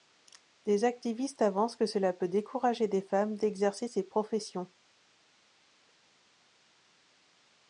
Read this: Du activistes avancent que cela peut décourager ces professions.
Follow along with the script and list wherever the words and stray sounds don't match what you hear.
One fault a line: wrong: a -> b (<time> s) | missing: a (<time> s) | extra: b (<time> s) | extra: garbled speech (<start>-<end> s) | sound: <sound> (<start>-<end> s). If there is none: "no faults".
wrong: Du -> Des (0.7 s)
extra: des femmes d'exercer (2.9 s)